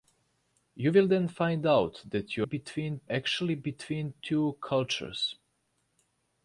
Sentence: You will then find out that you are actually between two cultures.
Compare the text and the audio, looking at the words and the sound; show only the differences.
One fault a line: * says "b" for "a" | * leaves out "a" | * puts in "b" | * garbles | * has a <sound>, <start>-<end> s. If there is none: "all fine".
* says "between" for "are"